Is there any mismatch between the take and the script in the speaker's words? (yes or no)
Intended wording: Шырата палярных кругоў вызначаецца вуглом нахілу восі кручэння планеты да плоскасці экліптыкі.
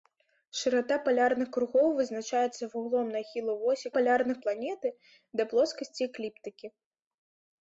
yes